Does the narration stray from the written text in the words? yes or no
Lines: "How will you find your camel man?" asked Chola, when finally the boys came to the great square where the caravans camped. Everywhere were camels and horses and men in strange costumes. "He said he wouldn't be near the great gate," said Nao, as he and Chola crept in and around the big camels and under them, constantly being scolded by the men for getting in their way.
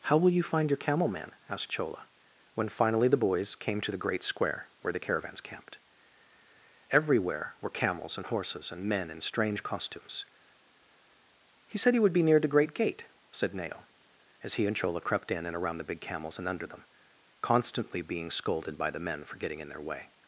yes